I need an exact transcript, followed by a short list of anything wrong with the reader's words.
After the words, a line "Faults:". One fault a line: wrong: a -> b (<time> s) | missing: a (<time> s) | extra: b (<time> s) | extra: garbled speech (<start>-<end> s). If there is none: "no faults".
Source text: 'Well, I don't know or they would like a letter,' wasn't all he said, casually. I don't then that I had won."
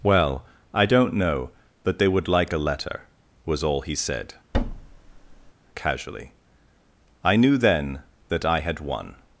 'Well, I don't know but they would like a letter,' was all he said, casually. I knew then that I had won."
Faults:
wrong: or -> but (1.8 s)
wrong: wasn't -> was (3.5 s)
wrong: don't -> knew (7.4 s)